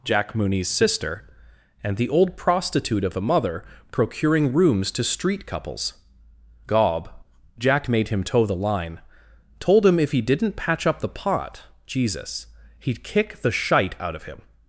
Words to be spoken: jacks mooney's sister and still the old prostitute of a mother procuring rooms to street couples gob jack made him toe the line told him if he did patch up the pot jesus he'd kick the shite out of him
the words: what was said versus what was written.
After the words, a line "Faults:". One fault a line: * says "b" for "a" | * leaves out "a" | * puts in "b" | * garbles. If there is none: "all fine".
jack mooney's sister and the old prostitute of a mother procuring rooms to street couples gob jack made him toe the line told him if he didn't patch up the pot jesus he'd kick the shite out of him
Faults:
* says "jack" for "jacks"
* leaves out "still"
* says "didn't" for "did"